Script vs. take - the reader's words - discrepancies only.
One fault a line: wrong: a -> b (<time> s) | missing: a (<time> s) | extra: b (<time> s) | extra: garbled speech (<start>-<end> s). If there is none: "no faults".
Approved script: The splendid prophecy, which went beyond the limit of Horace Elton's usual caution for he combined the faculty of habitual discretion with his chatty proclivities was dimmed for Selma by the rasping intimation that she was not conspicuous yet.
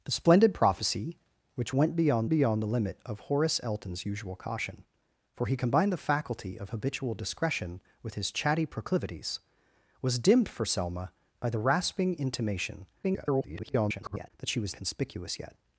extra: beyond (2.3 s)
extra: garbled speech (13.0-14.3 s)
missing: not (14.7 s)